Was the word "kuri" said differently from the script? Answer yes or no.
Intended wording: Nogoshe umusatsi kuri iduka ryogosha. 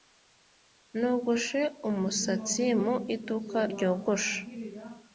yes